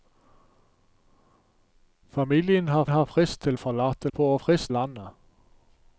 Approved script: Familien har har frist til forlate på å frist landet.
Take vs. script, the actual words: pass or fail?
pass